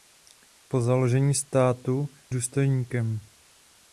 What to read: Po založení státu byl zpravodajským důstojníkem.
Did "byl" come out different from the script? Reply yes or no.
yes